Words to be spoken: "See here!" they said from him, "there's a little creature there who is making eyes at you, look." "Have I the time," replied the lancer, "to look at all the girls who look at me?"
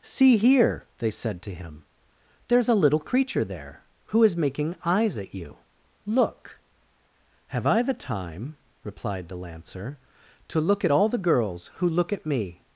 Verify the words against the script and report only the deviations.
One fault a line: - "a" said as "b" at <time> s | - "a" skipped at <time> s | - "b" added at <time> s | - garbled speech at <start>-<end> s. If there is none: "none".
- "from" said as "to" at 1.4 s